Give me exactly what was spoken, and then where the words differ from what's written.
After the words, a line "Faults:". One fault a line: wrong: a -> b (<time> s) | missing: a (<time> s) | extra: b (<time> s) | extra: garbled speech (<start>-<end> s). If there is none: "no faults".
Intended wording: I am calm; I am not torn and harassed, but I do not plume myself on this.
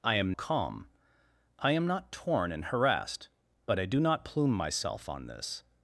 I am calm; I am not torn and harassed, but I do not plume myself on this.
Faults:
no faults